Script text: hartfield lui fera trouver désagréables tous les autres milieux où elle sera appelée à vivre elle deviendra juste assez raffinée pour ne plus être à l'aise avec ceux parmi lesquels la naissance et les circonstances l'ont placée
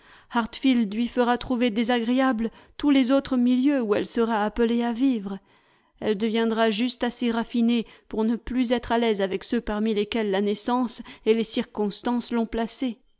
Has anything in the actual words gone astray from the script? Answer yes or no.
no